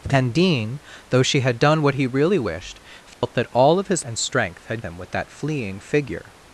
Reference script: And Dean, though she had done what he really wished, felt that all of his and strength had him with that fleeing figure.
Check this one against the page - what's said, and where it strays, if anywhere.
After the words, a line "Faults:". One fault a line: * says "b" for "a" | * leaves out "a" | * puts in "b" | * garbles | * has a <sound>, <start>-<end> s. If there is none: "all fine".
And Dean, though she had done what he really wished, felt that all of his and strength had him with that fleeing figure.
Faults:
* has a dropout, 3.1-3.2 s